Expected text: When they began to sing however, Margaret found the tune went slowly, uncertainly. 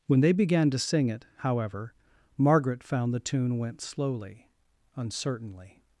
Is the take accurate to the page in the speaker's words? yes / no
no